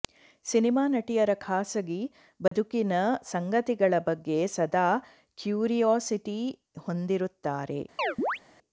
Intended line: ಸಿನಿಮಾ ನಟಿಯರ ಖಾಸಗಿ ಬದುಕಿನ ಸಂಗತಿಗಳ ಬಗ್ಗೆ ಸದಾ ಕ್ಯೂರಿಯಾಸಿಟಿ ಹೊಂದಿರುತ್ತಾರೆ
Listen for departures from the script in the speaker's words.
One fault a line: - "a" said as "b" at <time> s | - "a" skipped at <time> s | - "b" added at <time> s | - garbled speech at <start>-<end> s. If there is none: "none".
none